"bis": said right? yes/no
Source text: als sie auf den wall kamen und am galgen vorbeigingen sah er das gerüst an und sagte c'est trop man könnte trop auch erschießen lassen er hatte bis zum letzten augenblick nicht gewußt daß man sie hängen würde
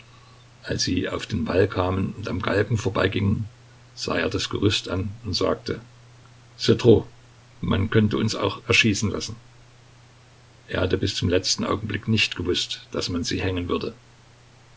yes